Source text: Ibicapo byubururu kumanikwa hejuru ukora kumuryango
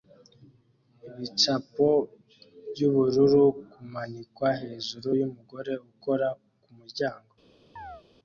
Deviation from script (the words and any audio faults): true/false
true